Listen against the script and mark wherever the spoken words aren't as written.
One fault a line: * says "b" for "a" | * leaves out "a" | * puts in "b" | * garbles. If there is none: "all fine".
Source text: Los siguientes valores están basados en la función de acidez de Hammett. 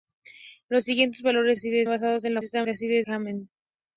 * says "acidez" for "están"
* says "están" for "función"
* leaves out "de"